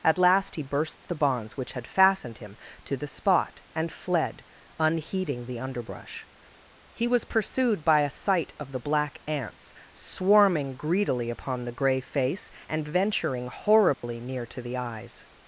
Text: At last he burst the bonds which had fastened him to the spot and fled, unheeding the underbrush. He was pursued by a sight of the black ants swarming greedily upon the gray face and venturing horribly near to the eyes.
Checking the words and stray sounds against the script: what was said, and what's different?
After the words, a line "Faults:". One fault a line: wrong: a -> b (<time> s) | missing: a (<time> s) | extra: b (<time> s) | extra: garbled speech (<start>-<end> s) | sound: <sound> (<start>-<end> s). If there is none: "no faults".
At last he burst the bonds which had fastened him to the spot and fled, unheeding the underbrush. He was pursued by a sight of the black ants swarming greedily upon the gray face and venturing horribly near to the eyes.
Faults:
sound: dropout (13.9-14.0 s)